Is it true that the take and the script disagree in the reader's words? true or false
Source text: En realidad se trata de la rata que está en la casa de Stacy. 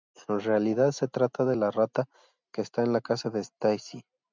false